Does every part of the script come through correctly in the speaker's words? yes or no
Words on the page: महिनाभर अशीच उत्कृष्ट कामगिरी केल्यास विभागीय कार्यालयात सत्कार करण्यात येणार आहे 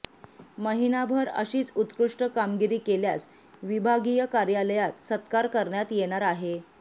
yes